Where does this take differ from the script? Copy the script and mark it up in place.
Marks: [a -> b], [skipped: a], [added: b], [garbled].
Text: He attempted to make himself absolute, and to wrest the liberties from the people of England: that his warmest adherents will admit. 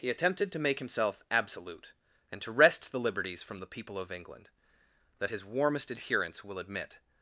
He attempted to make himself absolute, and to wrest the liberties from the people of England: that his warmest adherents will admit.